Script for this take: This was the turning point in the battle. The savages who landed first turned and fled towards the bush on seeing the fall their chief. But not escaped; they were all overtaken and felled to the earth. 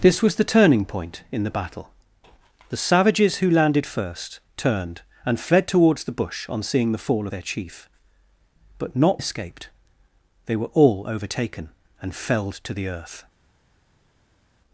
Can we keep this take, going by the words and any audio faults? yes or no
yes